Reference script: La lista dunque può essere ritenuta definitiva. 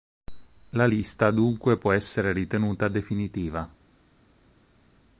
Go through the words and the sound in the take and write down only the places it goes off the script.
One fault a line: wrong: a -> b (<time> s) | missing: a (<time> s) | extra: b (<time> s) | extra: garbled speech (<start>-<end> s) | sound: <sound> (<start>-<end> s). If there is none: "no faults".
no faults